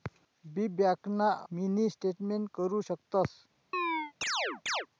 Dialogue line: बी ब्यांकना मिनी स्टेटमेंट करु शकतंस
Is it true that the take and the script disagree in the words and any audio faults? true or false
true